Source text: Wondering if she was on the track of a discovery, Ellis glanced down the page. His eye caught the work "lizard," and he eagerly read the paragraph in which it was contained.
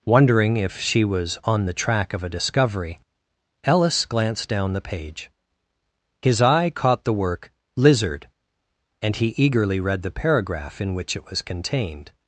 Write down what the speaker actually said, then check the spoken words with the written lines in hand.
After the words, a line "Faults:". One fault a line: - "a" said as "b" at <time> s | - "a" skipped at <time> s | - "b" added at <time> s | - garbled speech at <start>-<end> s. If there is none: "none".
Wondering if she was on the track of a discovery, Ellis glanced down the page. His eye caught the work "lizard," and he eagerly read the paragraph in which it was contained.
Faults:
none